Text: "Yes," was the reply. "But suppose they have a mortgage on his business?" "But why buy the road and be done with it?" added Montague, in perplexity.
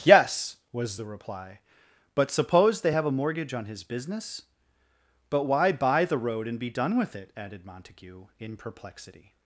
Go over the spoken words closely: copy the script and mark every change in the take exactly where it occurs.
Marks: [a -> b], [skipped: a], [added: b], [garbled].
"Yes," was the reply. "But suppose they have a mortgage on his business?" "But why buy the road and be done with it?" added Montague, in perplexity.